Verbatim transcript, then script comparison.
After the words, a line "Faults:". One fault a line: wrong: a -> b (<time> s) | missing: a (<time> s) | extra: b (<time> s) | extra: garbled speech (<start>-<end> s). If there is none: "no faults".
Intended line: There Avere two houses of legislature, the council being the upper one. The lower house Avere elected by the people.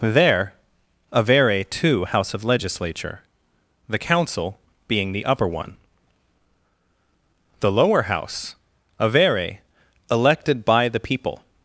There Avere two house of legislature, the council being the upper one. The lower house Avere elected by the people.
Faults:
wrong: houses -> house (2.0 s)